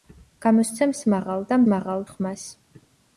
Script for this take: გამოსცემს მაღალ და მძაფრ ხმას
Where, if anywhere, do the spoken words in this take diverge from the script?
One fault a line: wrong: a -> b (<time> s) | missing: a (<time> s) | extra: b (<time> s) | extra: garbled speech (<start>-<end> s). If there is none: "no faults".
wrong: მძაფრ -> მაღალ (1.7 s)